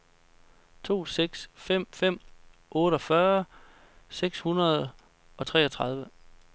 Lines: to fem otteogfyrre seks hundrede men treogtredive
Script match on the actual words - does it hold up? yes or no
no